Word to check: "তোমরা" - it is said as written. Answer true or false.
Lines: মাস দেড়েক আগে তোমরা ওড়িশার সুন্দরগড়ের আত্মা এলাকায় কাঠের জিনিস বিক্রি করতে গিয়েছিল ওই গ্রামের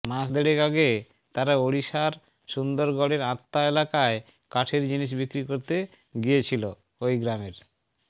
false